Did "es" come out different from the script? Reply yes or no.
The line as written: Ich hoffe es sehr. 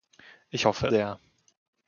yes